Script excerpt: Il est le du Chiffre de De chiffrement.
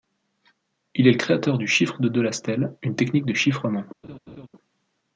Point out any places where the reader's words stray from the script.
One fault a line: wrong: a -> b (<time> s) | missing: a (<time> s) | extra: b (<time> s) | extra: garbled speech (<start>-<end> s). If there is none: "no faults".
extra: créateur (1.2 s)
extra: Delastelle une technique (2.1 s)